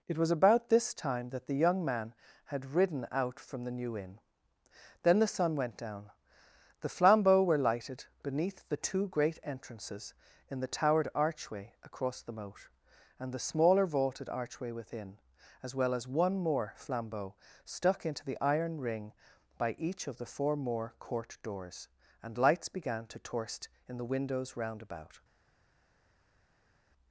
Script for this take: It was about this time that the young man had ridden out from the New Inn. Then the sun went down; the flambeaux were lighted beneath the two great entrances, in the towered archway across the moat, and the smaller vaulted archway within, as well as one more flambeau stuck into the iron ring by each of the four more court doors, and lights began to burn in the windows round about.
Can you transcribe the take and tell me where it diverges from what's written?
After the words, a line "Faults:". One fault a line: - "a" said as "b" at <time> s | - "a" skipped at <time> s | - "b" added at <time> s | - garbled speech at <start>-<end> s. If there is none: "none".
It was about this time that the young man had ridden out from the New Inn. Then the sun went down; the flambeaux were lighted beneath the two great entrances, in the towered archway across the moat, and the smaller vaulted archway within, as well as one more flambeau stuck into the iron ring by each of the four more court doors, and lights began to torst in the windows round about.
Faults:
- "burn" said as "torst" at 23.2 s